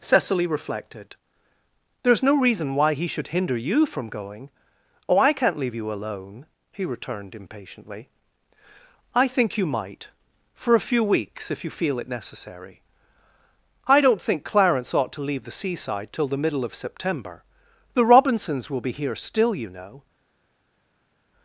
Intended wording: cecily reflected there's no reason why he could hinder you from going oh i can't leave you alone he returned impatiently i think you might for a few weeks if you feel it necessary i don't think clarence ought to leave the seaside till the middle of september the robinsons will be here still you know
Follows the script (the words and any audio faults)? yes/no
no